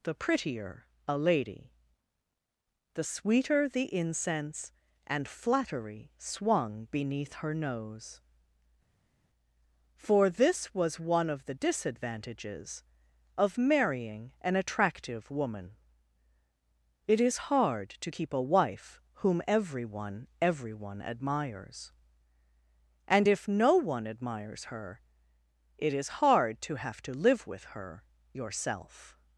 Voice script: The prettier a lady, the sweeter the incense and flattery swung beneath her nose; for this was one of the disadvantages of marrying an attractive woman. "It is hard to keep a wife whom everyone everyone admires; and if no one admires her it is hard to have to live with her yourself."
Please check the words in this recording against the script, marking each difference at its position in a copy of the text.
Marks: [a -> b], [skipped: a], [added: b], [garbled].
The prettier a lady, the sweeter the incense and flattery swung beneath her nose; for this was one of the disadvantages of marrying an attractive woman. "It is hard to keep a wife whom everyone everyone admires; and if no one admires her it is hard to have to live with her yourself."